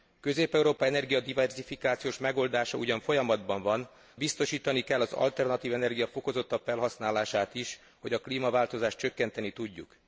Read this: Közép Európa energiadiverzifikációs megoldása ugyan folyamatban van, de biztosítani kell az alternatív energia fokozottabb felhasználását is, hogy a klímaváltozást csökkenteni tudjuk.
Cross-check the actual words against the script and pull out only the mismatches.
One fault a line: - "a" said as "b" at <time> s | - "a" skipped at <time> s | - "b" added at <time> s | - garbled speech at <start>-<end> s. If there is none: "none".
- "de" skipped at 3.9 s